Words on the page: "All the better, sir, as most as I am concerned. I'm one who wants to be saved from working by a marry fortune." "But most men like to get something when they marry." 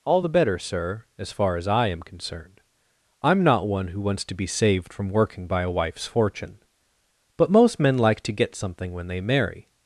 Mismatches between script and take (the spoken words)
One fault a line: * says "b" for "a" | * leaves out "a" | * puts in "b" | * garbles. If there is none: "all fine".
* says "far" for "most"
* puts in "not"
* says "wife's" for "marry"